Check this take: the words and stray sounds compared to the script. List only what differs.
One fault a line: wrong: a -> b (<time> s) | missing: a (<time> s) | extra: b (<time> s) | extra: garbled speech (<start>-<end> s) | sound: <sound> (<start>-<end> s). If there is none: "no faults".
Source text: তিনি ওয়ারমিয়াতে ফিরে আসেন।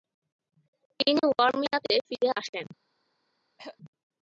sound: throat clearing (3.6-3.8 s)